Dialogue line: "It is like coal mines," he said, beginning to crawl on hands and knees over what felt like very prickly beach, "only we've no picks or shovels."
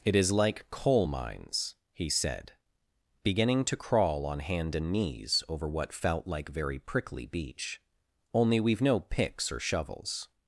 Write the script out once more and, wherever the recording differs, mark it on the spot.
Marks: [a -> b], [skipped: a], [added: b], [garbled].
"It is like coal mines," he said, beginning to crawl on [hands -> hand] and knees over what felt like very prickly beach, "only we've no picks or shovels."